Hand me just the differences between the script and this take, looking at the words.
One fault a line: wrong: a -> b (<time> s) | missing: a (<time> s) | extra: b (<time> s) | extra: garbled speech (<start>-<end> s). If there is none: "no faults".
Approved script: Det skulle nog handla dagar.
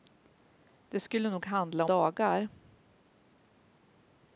no faults